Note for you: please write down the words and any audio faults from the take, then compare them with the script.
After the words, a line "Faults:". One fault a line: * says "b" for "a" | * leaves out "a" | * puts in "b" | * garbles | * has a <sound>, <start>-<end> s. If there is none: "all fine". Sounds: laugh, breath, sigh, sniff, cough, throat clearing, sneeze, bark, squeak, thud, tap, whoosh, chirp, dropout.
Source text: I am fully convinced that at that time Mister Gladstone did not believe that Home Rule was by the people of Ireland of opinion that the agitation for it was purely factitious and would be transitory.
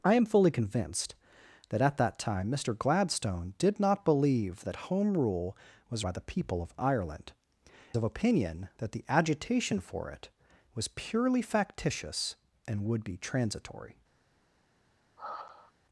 I am fully convinced that at that time Mister Gladstone did not believe that Home Rule was by the people of Ireland of opinion that the agitation for it was purely factitious and would be transitory.
Faults:
* has a sigh, 15.2-15.7 s